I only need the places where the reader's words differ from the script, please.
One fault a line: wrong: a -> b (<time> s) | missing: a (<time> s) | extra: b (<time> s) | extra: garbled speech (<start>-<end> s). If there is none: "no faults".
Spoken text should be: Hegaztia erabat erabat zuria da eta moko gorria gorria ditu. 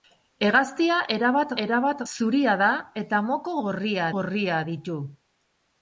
no faults